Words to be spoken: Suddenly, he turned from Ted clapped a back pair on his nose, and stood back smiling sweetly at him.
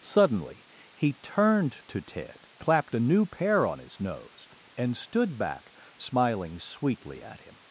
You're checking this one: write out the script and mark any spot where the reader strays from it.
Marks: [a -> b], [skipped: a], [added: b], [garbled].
Suddenly, he turned [from -> to] Ted clapped a [back -> new] pair on his nose, and stood back smiling sweetly at him.